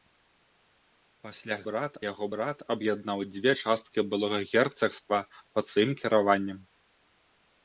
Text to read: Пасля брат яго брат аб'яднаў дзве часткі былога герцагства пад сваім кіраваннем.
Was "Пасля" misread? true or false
false